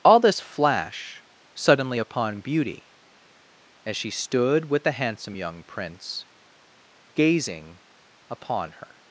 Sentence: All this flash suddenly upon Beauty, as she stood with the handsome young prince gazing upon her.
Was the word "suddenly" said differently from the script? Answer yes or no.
no